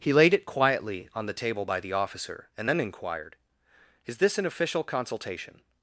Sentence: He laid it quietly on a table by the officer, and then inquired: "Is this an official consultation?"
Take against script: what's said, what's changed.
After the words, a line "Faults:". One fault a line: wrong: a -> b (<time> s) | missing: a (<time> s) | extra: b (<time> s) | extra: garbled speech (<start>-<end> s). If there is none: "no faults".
He laid it quietly on the table by the officer, and then inquired: "Is this an official consultation?"
Faults:
wrong: a -> the (1.3 s)